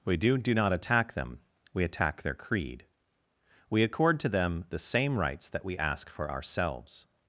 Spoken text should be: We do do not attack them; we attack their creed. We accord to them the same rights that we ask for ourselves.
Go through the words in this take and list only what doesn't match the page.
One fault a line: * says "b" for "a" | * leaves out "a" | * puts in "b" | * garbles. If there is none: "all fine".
all fine